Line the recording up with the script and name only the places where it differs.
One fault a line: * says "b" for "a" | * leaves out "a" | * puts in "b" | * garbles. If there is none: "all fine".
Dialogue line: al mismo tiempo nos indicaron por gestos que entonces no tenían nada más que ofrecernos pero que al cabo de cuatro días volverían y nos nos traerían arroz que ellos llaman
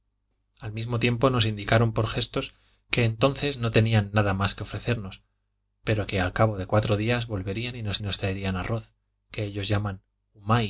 all fine